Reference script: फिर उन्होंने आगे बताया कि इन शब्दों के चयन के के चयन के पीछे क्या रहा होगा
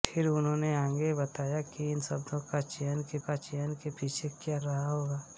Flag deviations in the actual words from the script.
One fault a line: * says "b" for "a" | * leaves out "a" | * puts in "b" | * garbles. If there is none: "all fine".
all fine